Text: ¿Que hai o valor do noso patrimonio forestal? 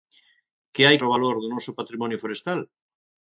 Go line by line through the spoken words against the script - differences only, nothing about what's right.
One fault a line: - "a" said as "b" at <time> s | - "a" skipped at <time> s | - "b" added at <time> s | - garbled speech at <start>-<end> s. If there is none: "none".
none